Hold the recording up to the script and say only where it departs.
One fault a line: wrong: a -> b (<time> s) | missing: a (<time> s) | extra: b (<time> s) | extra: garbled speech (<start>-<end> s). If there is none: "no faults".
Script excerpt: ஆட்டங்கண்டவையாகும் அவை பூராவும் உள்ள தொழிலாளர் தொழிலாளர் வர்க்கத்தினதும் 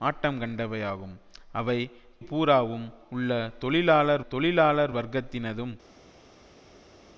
no faults